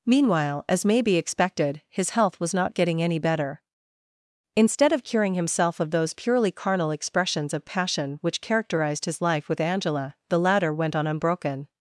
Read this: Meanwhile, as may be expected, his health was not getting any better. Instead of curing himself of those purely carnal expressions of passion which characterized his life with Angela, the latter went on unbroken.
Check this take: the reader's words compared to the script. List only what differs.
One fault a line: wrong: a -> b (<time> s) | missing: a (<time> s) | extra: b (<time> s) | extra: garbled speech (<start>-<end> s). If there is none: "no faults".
no faults